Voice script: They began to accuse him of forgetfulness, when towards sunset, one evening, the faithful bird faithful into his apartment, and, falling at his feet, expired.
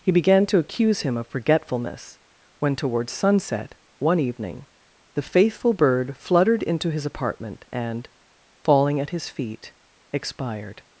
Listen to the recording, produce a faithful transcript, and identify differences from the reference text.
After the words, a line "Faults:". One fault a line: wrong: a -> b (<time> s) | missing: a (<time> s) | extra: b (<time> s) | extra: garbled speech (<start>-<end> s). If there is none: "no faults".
He began to accuse him of forgetfulness, when towards sunset, one evening, the faithful bird fluttered into his apartment, and, falling at his feet, expired.
Faults:
wrong: They -> He (0.0 s)
wrong: faithful -> fluttered (6.2 s)